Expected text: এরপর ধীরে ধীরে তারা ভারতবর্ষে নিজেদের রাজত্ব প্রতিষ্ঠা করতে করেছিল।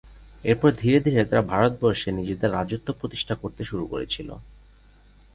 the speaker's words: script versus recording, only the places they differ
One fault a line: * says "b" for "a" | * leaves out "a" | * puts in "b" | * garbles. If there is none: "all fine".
* puts in "শুরু"